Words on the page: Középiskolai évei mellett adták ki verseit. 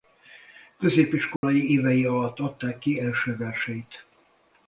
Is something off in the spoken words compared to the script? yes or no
yes